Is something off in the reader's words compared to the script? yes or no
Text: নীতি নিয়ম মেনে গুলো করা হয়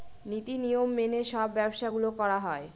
yes